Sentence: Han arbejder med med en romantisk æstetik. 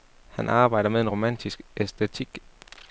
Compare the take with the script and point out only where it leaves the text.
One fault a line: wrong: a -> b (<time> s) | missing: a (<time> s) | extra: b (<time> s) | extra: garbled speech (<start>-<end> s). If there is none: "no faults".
missing: med (1.0 s)